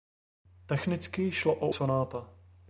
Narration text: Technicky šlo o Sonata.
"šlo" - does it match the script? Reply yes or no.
yes